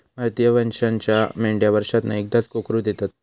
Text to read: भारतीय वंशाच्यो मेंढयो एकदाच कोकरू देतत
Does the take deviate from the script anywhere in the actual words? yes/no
yes